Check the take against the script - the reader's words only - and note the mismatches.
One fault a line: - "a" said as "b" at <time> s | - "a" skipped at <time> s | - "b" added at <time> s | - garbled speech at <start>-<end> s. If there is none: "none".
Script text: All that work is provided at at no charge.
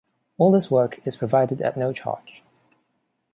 - "that" said as "this" at 0.5 s
- "at" skipped at 1.8 s